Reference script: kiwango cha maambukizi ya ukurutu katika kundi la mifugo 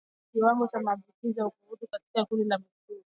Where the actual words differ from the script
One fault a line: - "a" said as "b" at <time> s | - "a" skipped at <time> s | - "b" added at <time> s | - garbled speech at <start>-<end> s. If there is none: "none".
none